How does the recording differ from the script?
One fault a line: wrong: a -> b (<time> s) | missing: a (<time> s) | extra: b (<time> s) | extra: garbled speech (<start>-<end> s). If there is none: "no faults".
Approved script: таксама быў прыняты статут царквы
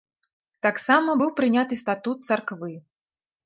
no faults